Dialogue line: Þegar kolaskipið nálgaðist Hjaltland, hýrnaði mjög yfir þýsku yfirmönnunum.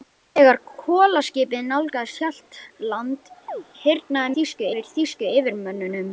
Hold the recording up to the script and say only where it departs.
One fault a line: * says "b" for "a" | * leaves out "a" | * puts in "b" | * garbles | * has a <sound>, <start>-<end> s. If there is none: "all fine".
* has a chirp, 3.5-3.6 s
* says "þýsku" for "mjög"